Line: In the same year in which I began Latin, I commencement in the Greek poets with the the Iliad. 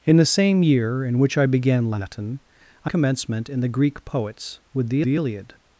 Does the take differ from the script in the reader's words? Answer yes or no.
no